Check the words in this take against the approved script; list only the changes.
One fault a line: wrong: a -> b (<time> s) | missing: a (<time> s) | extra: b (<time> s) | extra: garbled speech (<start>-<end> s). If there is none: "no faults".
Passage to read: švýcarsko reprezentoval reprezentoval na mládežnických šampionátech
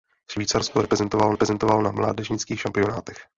no faults